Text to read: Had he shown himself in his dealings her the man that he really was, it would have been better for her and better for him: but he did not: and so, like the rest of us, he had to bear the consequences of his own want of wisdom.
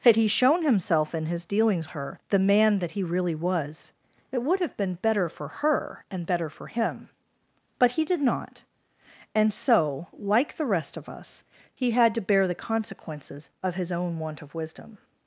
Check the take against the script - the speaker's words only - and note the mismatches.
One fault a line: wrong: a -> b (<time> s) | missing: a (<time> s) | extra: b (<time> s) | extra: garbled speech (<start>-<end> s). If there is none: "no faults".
no faults